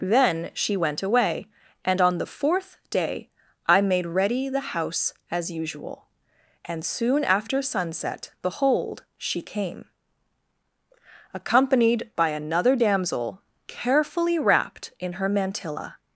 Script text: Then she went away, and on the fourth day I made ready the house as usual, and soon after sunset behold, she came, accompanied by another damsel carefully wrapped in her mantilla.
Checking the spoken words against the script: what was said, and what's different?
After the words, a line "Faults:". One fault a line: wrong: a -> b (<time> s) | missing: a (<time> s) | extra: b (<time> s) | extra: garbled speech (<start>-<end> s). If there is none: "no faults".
Then she went away, and on the fourth day I made ready the house as usual, and soon after sunset behold, she came, accompanied by another damsel carefully wrapped in her mantilla.
Faults:
no faults